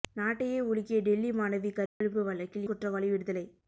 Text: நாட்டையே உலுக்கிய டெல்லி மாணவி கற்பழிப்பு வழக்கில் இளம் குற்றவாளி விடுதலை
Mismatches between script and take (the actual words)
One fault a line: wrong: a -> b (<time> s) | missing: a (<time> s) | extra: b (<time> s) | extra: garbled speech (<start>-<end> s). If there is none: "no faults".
missing: இளம் (2.7 s)